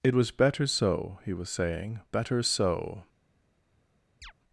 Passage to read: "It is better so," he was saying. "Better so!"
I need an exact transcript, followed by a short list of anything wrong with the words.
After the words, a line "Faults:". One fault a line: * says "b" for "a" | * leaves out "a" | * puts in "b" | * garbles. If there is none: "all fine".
"It was better so," he was saying. "Better so!"
Faults:
* says "was" for "is"